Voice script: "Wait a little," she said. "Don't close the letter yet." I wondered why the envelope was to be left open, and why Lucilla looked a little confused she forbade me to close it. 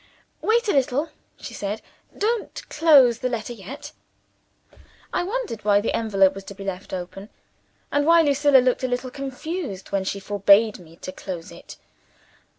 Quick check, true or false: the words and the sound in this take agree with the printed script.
false